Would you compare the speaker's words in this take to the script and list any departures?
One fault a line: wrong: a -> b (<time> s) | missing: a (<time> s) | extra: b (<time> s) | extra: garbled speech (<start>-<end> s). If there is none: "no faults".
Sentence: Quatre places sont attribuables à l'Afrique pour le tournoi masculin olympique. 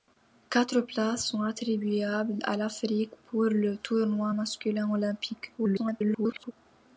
extra: garbled speech (5.6-6.5 s)